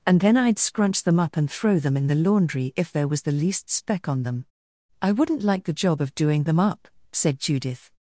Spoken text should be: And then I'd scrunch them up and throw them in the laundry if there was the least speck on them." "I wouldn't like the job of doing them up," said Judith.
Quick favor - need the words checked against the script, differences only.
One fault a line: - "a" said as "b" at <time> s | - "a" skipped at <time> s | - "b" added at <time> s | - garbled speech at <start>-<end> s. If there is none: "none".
none